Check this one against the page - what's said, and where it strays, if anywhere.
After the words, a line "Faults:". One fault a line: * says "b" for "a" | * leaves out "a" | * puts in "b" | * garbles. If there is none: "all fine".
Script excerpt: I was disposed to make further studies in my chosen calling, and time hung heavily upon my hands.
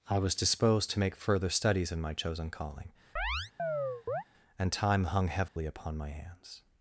I was disposed to make further studies in my chosen calling, and time hung heavily upon my hands.
Faults:
all fine